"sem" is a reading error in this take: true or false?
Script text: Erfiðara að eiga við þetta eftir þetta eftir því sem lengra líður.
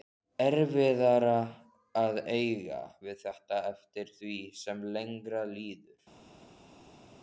false